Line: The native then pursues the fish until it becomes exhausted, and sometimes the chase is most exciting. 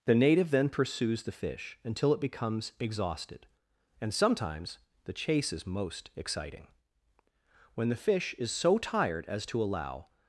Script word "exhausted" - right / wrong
right